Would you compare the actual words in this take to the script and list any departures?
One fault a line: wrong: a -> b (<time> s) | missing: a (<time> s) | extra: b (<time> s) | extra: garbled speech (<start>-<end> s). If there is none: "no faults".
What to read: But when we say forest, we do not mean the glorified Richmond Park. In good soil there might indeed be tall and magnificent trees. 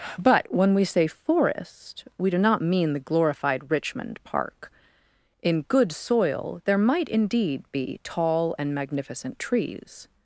no faults